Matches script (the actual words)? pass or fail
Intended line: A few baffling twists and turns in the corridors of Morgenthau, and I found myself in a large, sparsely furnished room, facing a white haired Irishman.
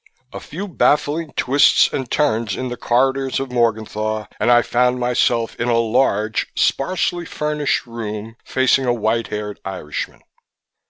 pass